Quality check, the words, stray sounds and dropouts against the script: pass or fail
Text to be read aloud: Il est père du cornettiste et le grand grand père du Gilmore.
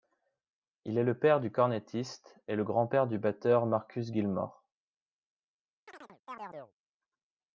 fail